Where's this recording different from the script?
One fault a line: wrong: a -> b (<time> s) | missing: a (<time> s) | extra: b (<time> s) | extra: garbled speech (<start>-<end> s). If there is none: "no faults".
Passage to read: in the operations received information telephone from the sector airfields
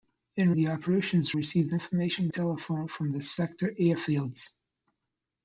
no faults